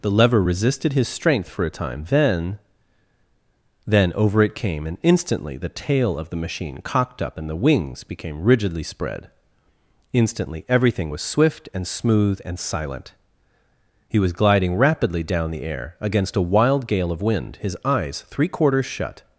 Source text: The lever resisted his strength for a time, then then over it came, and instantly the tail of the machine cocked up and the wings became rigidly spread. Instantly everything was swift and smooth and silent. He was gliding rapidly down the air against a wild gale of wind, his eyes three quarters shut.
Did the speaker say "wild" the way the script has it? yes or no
yes